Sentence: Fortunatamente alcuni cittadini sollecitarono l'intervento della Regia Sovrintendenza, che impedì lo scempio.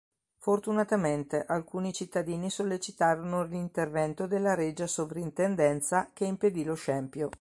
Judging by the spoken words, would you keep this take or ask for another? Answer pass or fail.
pass